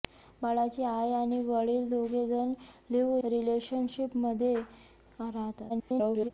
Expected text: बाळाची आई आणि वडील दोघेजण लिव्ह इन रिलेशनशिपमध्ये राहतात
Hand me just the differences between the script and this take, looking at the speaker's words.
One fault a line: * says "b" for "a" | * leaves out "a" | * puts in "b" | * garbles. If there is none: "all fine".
* leaves out "इन"
* garbles